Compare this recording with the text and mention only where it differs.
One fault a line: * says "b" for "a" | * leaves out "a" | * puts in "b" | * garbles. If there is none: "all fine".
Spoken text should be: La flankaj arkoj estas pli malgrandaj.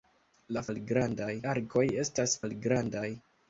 * says "malgrandaj" for "flankaj"
* leaves out "pli"